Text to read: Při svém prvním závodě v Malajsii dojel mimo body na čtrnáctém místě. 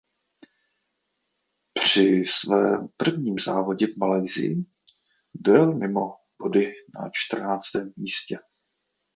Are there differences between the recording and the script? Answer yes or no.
no